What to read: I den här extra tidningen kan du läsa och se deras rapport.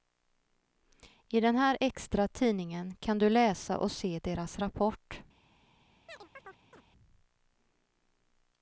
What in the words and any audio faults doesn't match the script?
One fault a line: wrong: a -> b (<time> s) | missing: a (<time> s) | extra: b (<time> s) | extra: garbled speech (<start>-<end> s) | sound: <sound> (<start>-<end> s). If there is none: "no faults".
sound: chirp (6.1-6.8 s)